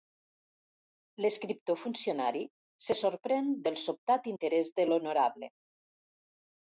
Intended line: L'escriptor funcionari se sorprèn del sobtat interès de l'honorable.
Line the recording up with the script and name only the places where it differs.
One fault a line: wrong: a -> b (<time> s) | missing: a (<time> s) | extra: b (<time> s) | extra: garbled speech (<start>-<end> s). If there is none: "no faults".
no faults